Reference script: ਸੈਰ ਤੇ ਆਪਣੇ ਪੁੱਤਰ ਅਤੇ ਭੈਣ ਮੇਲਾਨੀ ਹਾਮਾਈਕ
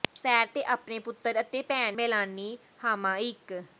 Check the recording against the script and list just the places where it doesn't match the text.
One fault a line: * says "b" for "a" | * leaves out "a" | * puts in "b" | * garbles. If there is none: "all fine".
all fine